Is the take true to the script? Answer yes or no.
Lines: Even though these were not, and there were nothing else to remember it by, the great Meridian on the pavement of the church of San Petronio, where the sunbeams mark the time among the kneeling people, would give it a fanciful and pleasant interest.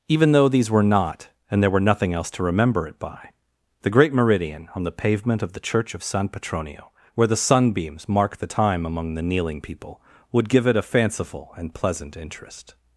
yes